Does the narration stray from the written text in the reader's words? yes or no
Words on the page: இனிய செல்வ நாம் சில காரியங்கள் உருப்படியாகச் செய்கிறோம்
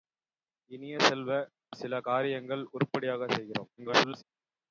yes